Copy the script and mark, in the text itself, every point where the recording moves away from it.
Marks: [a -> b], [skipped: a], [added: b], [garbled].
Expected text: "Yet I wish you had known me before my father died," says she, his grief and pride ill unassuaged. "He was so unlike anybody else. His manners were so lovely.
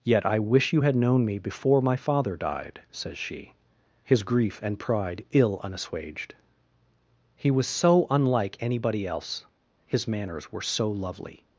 "Yet I wish you had known me before my father died," says she, his grief and pride ill unassuaged. "He was so unlike anybody else. His manners were so lovely.